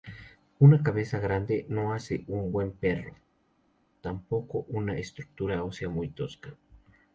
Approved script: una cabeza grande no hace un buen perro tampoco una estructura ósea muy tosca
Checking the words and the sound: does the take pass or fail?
pass